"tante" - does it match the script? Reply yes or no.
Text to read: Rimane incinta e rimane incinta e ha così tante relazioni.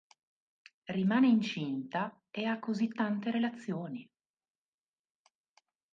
yes